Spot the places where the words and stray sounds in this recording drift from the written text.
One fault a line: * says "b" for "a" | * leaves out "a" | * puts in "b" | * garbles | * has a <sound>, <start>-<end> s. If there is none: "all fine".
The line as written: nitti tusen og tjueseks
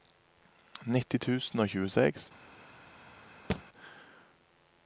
* has a thud, 3.5-3.6 s